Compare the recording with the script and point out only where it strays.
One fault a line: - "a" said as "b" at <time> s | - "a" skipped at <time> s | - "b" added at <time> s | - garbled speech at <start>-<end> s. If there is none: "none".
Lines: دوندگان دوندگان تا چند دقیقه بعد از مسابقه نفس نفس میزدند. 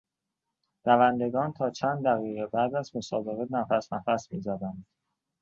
- "دوندگان" skipped at 1.5 s